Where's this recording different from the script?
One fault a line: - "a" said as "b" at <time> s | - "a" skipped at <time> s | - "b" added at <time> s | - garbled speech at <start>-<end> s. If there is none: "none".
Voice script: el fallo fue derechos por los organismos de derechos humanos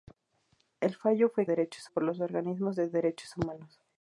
none